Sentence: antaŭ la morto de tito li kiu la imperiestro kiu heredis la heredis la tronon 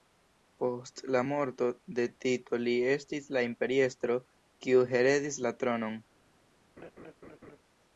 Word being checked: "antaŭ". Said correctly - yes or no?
no